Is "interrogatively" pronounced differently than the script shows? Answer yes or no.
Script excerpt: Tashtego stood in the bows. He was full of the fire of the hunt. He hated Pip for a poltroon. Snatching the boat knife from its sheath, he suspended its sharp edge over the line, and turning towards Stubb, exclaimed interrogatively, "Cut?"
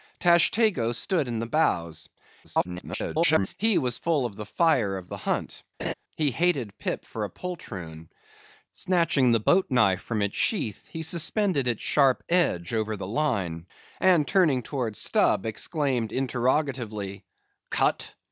no